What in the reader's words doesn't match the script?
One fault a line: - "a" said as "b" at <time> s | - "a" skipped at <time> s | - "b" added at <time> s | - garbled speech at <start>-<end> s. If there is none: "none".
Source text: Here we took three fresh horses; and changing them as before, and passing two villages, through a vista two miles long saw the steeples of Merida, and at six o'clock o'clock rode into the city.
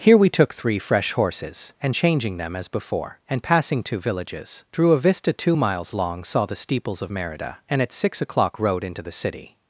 - "o'clock" skipped at 8.6 s